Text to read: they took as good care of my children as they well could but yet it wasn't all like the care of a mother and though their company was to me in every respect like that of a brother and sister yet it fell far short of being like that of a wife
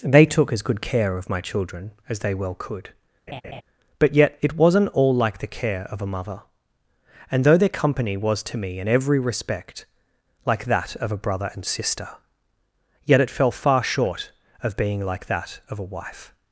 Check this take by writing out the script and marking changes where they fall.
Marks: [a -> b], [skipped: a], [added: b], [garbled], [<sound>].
they took as good care of my children as they well could [laugh] but yet it wasn't all like the care of a mother and though their company was to me in every respect like that of a brother and sister yet it fell far short of being like that of a wife